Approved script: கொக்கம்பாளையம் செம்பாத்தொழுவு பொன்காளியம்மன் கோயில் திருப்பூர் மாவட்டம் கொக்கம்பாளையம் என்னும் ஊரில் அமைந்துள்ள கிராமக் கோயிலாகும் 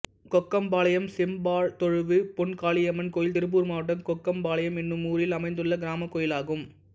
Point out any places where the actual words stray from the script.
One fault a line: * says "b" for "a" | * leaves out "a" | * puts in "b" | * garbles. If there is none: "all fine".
all fine